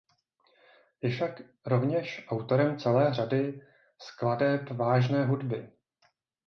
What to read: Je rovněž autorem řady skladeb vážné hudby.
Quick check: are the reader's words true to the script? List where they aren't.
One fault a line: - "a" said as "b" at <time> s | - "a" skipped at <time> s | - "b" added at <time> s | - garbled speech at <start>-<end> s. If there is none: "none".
- "však" added at 1.1 s
- "celé" added at 2.8 s